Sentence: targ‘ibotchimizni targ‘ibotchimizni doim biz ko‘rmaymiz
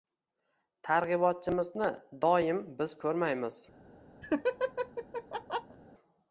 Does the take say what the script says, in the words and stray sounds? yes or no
no